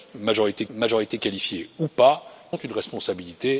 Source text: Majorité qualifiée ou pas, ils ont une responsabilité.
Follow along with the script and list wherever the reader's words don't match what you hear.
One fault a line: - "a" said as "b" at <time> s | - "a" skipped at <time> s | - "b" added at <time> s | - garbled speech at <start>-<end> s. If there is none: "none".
- "majorité" added at 0.7 s
- "ils" skipped at 2.2 s